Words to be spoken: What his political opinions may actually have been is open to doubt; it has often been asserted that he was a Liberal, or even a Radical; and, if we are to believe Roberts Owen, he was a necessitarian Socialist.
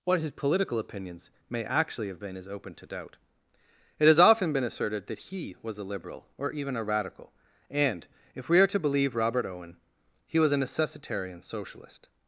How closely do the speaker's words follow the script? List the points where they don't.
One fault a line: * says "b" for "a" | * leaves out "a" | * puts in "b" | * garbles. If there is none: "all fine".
* says "Robert" for "Roberts"